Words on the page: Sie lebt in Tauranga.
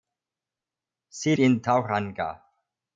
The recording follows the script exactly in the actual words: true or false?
false